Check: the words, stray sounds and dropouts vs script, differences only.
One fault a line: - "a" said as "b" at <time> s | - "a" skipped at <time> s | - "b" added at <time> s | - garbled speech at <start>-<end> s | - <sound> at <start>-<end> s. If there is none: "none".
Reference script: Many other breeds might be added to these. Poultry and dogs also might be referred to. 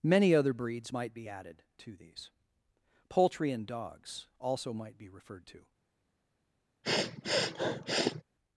- sniff at 6.8-8.2 s